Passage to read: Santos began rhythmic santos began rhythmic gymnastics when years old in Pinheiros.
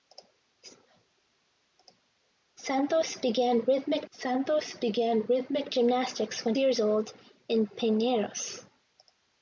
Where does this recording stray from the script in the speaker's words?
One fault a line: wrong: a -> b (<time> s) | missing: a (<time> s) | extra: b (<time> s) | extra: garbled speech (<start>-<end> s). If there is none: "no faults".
no faults